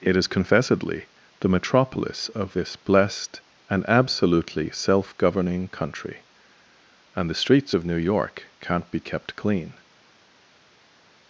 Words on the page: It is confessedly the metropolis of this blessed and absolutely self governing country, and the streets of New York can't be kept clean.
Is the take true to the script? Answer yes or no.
yes